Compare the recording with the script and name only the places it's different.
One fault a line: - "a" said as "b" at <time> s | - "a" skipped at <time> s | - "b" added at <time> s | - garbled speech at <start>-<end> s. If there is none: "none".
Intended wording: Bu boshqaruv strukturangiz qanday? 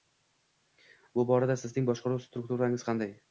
- "borada sizning" added at 1.3 s